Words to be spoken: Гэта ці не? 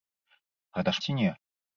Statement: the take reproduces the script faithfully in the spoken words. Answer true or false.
true